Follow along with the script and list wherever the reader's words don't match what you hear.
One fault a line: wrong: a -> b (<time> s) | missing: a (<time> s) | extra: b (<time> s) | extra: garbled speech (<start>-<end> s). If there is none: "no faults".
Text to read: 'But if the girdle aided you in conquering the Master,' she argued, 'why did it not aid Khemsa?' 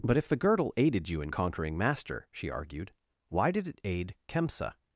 missing: the (1.8 s)
missing: not (3.8 s)